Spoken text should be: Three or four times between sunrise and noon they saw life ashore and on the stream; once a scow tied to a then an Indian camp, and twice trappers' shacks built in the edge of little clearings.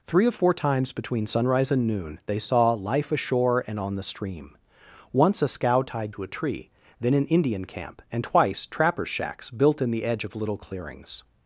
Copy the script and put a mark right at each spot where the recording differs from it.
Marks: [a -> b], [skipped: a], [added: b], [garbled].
Three or four times between sunrise and noon they saw life ashore and on the stream; once a scow tied to a [added: tree] then an Indian camp, and twice trappers' shacks built in the edge of little clearings.